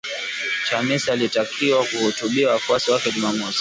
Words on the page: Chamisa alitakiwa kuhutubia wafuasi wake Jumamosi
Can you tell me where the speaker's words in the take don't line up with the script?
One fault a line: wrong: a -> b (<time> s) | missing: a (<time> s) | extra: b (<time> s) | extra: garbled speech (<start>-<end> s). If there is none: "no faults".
no faults